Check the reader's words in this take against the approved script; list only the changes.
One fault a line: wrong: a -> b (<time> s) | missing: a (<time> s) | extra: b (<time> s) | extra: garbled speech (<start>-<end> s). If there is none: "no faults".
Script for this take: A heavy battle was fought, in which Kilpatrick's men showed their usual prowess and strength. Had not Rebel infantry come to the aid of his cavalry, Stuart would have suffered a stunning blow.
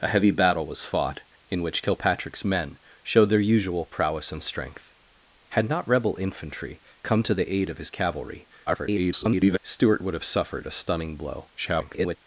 extra: garbled speech (8.7-9.6 s)
extra: garbled speech (11.6-12.2 s)